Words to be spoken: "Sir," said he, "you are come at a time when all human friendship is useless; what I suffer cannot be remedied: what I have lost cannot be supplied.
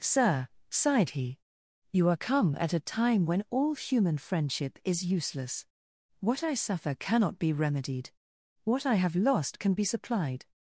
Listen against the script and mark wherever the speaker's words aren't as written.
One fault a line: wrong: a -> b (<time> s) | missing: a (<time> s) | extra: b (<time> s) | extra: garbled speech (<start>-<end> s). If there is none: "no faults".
wrong: said -> sighed (0.7 s)
wrong: cannot -> can (9.6 s)